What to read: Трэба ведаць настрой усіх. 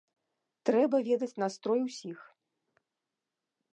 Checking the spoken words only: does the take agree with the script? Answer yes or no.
yes